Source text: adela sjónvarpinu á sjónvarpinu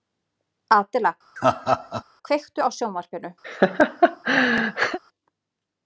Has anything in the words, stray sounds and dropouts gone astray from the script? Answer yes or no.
yes